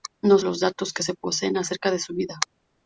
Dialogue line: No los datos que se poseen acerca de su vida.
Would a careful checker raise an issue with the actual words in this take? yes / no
no